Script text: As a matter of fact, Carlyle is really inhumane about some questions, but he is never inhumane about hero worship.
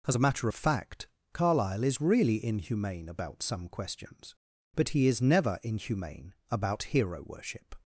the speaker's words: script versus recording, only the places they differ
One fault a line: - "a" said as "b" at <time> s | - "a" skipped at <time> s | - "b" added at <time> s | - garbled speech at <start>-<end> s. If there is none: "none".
none